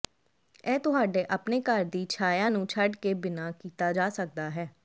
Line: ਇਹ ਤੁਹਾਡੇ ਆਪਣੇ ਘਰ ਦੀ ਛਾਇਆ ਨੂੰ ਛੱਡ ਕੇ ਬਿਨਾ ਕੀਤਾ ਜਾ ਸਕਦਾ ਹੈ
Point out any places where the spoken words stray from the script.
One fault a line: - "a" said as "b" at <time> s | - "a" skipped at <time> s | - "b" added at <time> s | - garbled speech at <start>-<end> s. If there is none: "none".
none